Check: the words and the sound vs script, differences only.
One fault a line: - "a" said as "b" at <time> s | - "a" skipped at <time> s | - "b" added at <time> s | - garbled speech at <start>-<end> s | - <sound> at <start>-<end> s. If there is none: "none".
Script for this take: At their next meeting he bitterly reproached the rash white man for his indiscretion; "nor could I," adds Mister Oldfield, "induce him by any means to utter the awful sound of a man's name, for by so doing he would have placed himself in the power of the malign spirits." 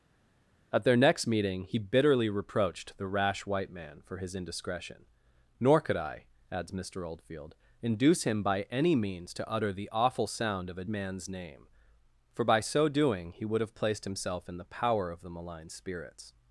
none